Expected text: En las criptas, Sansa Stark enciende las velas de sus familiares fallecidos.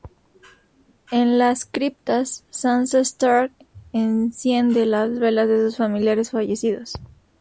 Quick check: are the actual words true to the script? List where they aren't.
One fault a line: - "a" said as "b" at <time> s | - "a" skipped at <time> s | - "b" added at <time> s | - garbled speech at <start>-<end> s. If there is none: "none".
none